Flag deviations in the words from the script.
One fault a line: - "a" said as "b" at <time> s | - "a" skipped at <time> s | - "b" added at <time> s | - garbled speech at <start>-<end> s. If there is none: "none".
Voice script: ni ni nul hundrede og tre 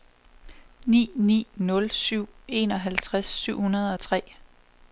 - "syv enoghalvtreds syv" added at 1.9 s